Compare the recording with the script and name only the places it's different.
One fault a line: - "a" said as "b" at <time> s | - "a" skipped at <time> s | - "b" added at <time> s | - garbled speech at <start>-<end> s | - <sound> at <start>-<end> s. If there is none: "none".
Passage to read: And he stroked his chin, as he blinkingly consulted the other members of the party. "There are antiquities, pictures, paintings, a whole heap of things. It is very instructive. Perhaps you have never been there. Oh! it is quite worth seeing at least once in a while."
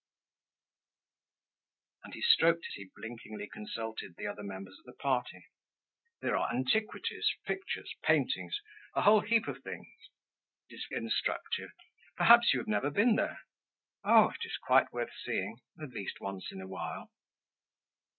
- "his chin as" skipped at 2.7 s
- "very" skipped at 10.9 s